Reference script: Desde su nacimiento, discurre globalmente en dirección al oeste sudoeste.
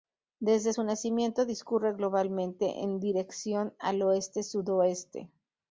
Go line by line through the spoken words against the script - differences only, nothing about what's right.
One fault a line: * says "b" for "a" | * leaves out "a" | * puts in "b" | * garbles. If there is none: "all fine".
all fine